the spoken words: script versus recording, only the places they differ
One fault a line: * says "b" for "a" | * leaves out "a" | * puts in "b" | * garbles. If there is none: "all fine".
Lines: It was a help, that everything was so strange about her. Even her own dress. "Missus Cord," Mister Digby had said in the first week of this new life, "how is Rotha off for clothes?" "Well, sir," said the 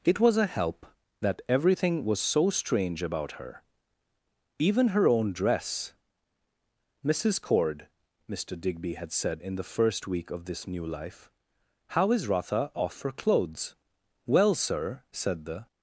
all fine